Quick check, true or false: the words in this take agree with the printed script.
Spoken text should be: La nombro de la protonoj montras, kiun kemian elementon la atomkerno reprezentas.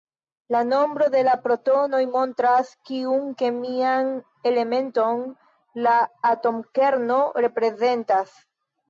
true